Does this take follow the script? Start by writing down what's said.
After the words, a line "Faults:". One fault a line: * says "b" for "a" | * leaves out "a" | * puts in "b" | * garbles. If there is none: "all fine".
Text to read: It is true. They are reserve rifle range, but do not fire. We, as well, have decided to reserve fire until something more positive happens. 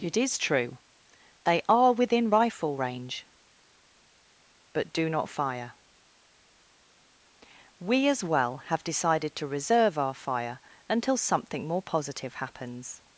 It is true. They are within rifle range, but do not fire. We, as well, have decided to reserve our fire until something more positive happens.
Faults:
* says "within" for "reserve"
* puts in "our"